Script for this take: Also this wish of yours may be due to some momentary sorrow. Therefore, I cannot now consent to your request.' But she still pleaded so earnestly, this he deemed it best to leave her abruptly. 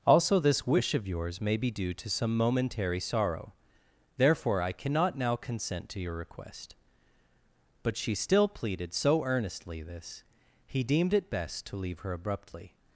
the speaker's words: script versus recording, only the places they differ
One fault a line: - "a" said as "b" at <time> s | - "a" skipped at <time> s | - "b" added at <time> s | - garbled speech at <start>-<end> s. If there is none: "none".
none